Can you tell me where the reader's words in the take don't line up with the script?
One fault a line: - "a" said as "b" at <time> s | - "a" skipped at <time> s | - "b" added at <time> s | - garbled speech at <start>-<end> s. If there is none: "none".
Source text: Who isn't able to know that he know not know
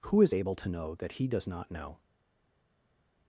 - "isn't" said as "is" at 0.2 s
- "know" said as "does" at 1.3 s